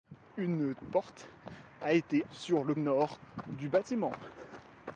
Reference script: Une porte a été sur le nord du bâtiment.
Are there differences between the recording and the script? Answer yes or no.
no